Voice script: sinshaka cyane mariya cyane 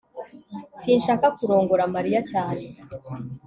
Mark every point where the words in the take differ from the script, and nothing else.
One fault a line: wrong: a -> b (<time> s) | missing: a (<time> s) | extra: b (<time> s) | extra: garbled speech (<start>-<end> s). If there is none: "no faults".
wrong: cyane -> kurongora (1.4 s)